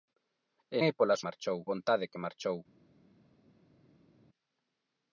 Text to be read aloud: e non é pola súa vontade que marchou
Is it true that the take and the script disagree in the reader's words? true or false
true